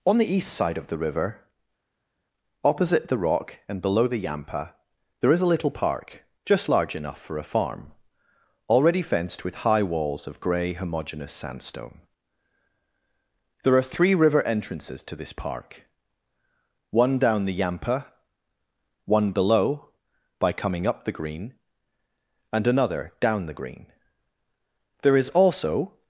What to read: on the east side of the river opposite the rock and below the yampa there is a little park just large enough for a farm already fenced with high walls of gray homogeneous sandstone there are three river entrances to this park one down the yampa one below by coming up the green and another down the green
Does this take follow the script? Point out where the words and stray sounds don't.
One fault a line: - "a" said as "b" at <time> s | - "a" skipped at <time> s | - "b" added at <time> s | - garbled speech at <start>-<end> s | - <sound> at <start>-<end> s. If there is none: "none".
- "there is also" added at 25.0 s